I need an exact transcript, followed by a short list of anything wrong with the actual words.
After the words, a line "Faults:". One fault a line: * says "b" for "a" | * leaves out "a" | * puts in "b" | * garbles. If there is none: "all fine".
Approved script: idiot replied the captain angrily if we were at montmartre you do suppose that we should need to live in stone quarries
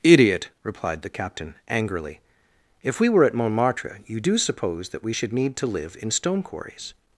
idiot replied the captain angrily if we were at montmartre you do suppose that we should need to live in stone quarries
Faults:
all fine